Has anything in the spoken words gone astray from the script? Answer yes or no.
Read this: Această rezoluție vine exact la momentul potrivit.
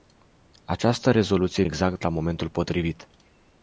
yes